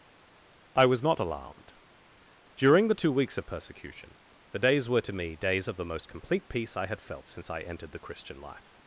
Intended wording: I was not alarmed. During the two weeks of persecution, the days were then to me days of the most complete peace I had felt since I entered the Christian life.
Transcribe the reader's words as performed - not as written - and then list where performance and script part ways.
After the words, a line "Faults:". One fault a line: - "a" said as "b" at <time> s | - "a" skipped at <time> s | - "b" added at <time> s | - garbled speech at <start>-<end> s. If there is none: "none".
I was not alarmed. During the two weeks of persecution, the days were to me days of the most complete peace I had felt since I entered the Christian life.
Faults:
- "then" skipped at 5.0 s